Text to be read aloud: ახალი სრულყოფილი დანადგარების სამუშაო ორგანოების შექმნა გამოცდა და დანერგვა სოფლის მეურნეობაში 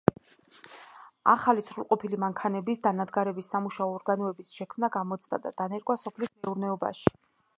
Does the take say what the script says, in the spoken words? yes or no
no